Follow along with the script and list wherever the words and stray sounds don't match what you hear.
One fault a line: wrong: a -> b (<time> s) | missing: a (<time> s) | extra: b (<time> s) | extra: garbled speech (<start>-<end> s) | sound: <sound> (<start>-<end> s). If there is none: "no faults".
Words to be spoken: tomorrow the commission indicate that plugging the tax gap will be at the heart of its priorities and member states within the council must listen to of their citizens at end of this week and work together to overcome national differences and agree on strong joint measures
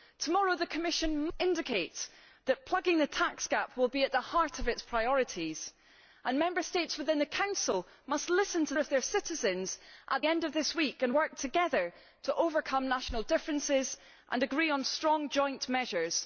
no faults